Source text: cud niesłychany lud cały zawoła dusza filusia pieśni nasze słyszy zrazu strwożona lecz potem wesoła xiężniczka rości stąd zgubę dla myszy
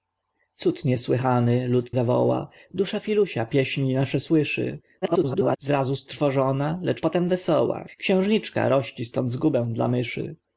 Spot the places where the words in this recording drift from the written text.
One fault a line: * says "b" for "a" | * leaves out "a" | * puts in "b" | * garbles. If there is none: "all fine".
* leaves out "cały"
* garbles